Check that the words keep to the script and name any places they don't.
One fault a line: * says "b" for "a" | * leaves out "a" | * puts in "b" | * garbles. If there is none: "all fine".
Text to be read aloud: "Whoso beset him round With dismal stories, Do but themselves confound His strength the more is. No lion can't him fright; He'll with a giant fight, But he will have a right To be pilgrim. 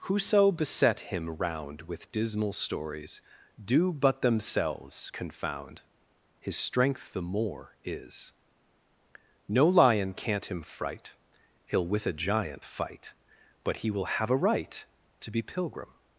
all fine